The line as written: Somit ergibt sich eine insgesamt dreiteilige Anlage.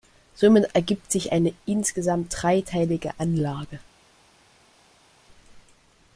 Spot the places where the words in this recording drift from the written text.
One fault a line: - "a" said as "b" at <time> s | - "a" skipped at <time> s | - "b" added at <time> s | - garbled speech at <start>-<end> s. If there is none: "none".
none